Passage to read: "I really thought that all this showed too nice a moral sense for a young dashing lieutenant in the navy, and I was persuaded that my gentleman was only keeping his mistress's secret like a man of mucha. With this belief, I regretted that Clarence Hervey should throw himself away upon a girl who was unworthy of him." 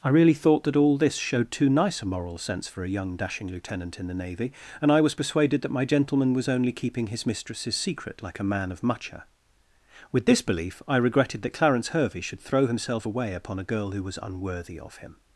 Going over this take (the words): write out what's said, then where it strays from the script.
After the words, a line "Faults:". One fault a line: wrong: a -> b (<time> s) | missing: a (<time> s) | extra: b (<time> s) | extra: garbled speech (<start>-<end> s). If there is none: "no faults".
"I really thought that all this showed too nice a moral sense for a young dashing lieutenant in the navy, and I was persuaded that my gentleman was only keeping his mistress's secret like a man of mucha. With this belief, I regretted that Clarence Hervey should throw himself away upon a girl who was unworthy of him."
Faults:
no faults